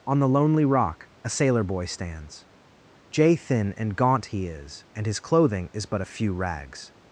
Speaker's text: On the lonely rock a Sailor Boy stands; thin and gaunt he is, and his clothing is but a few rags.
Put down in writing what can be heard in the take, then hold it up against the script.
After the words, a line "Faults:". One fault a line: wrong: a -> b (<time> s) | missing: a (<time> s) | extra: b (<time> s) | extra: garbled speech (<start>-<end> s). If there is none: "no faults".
On the lonely rock a Sailor Boy stands; jay thin and gaunt he is, and his clothing is but a few rags.
Faults:
extra: jay (3.1 s)